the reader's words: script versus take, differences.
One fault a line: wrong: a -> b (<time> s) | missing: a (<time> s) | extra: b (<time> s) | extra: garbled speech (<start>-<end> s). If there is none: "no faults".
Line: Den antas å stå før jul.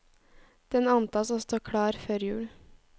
extra: klar (1.6 s)